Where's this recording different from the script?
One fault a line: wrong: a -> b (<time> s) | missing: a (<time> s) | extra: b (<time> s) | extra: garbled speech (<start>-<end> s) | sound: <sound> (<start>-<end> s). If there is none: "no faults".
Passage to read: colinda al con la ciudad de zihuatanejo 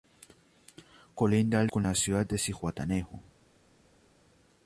no faults